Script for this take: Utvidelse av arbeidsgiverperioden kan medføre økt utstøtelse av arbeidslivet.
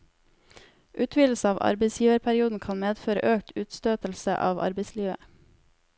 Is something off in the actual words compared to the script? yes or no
no